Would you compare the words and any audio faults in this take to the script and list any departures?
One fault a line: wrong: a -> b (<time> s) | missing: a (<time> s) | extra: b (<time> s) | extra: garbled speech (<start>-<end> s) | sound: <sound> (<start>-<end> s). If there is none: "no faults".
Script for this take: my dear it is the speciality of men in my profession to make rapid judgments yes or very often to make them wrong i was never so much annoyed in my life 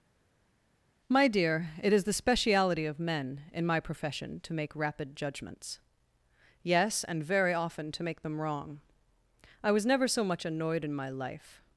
wrong: or -> and (7.0 s)